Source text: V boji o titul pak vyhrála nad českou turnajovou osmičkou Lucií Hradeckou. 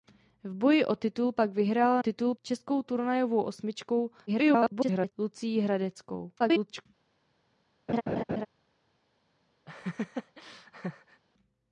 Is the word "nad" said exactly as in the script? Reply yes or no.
no